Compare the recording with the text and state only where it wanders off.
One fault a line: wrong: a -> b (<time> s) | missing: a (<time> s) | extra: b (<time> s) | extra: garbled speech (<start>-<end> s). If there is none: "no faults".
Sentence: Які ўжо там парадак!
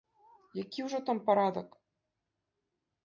no faults